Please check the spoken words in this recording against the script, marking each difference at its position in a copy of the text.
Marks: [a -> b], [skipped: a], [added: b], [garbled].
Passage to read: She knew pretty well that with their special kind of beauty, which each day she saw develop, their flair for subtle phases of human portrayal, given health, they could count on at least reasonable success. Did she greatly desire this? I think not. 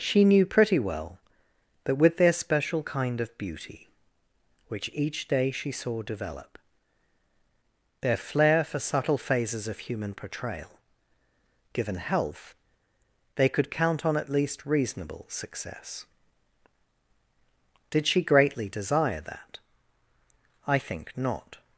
She knew pretty well that with their special kind of beauty, which each day she saw develop, their flair for subtle phases of human portrayal, given health, they could count on at least reasonable success. Did she greatly desire [this? -> that] I think not.